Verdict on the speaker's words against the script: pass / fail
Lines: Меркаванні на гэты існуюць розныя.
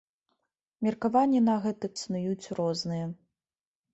pass